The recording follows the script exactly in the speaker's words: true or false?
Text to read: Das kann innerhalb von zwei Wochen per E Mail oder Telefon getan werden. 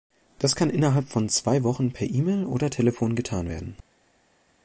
true